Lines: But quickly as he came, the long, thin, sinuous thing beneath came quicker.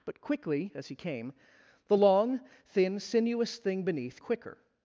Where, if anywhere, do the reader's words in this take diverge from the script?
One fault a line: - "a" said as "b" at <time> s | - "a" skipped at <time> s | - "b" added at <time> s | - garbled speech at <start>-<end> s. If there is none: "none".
- "came" skipped at 4.2 s